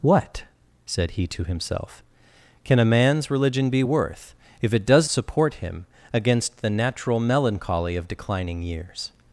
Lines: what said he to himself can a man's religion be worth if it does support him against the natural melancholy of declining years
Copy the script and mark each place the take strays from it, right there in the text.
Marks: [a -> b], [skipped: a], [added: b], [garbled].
what said he to himself can a man's religion be worth if it does support him against the natural melancholy of declining years